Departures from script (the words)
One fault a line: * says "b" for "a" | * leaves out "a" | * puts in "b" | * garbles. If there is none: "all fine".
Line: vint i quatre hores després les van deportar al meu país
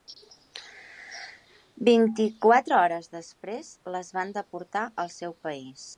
* says "seu" for "meu"